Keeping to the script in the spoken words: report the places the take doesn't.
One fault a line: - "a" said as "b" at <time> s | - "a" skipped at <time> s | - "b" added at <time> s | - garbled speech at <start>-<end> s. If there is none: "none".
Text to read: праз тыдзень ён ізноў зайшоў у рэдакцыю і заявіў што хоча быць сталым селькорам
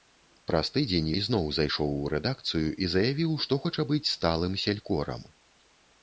- "ён" skipped at 1.1 s